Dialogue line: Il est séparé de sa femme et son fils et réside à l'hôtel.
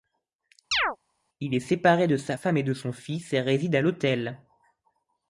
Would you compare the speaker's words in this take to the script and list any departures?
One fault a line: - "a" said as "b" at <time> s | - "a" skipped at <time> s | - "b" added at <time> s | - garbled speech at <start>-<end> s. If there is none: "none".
- "de" added at 2.6 s